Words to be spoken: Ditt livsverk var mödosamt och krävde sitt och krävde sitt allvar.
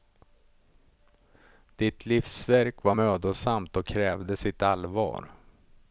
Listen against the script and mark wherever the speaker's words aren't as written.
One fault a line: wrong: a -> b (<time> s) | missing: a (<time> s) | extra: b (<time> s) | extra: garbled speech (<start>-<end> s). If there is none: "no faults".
missing: och krävde sitt (4.6 s)